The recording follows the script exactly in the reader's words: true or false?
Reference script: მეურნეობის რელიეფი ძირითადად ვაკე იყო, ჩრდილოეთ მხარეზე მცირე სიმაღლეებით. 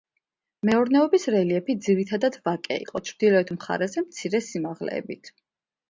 true